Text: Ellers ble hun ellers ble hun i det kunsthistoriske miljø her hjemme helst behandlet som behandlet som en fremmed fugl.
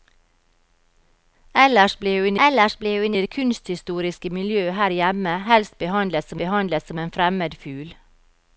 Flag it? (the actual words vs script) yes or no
no